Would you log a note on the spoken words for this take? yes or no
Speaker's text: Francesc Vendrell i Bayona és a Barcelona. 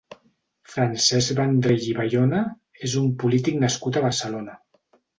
yes